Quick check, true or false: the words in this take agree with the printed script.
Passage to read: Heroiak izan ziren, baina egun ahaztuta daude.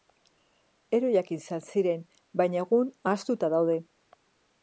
true